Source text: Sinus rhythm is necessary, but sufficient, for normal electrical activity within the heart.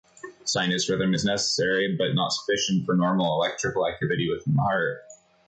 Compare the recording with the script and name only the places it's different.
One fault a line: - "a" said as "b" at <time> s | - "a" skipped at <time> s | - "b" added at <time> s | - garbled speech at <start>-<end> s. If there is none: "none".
- "not" added at 2.1 s